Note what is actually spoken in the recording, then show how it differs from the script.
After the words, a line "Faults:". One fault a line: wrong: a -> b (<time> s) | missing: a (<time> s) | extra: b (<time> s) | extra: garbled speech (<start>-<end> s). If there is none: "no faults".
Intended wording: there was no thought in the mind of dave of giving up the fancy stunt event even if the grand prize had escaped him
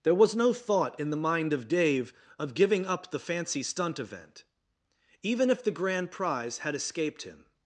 there was no thought in the mind of dave of giving up the fancy stunt event even if the grand prize had escaped him
Faults:
no faults